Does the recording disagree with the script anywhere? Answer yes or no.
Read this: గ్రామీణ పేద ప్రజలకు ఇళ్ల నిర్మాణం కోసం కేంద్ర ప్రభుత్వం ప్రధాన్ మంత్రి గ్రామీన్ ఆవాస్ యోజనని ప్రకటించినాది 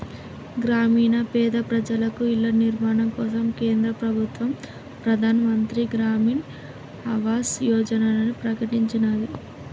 no